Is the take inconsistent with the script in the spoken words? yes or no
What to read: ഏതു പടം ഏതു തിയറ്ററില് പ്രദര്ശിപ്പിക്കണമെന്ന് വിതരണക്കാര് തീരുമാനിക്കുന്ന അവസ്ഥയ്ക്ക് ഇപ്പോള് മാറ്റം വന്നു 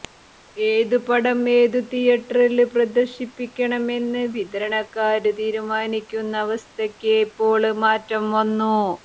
no